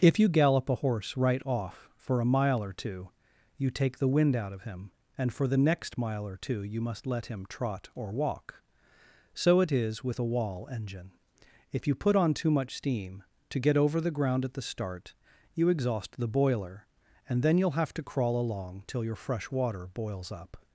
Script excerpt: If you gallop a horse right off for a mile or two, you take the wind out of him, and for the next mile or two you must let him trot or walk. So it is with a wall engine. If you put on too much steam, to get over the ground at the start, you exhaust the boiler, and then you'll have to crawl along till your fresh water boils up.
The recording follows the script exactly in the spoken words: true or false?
true